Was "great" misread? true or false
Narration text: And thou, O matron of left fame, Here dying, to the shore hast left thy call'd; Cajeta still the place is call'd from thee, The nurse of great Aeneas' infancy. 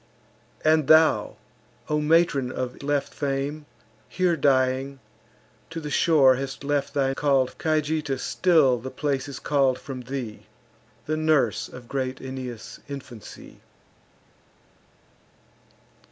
false